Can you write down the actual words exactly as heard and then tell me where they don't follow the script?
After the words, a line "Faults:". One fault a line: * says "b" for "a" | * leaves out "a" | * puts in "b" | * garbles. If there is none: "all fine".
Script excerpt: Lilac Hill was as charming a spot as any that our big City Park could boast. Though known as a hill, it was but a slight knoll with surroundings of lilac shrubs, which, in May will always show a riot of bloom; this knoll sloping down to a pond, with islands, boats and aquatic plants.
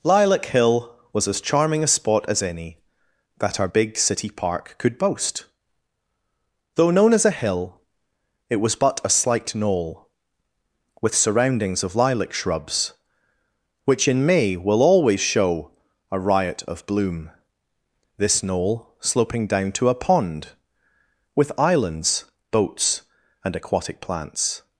Lilac Hill was as charming a spot as any that our big City Park could boast. Though known as a hill, it was but a slight knoll with surroundings of lilac shrubs, which, in May will always show a riot of bloom; this knoll sloping down to a pond, with islands, boats and aquatic plants.
Faults:
all fine